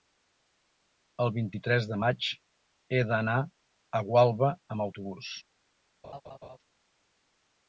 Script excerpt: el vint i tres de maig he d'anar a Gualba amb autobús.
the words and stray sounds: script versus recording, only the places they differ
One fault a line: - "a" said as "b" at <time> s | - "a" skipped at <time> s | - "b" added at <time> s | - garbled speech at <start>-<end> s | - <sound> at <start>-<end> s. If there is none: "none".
- laugh at 6.0-6.6 s